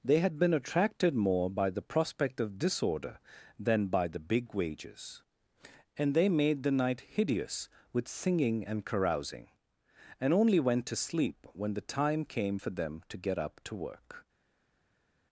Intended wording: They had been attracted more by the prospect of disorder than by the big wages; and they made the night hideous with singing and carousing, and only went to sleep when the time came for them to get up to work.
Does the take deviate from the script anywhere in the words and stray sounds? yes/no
no